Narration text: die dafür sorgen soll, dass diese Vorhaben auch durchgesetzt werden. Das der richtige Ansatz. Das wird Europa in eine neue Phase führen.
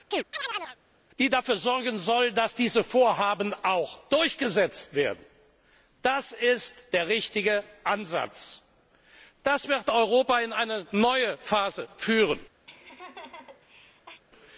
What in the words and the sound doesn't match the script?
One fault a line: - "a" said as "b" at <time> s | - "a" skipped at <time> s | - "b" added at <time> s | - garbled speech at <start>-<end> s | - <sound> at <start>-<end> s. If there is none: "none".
- chirp at 0.1-0.8 s
- "ist" added at 6.3 s
- laugh at 12.7-14.2 s